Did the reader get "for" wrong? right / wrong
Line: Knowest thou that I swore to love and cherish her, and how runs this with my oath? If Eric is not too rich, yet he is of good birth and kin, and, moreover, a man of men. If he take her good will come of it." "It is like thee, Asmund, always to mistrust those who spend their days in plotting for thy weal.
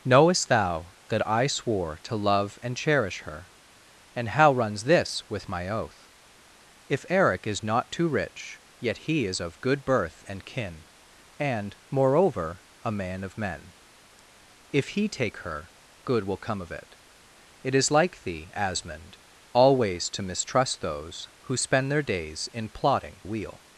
wrong